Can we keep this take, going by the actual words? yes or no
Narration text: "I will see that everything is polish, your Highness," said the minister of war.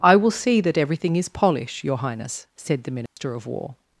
yes